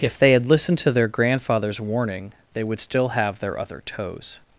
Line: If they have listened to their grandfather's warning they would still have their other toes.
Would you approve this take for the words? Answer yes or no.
no